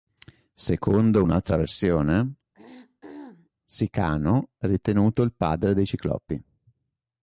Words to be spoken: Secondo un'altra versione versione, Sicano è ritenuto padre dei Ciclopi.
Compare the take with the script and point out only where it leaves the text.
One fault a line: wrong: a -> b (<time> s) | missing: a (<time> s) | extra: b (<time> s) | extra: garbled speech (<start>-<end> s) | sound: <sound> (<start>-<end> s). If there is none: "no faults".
missing: versione (2.3 s)
sound: throat clearing (2.5-3.5 s)
extra: il (5.2 s)